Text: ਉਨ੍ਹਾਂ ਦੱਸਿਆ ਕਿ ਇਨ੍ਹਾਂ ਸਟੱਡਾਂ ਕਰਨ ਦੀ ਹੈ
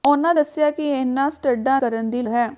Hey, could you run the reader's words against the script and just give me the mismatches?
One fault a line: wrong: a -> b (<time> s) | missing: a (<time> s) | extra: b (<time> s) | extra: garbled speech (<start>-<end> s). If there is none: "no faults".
no faults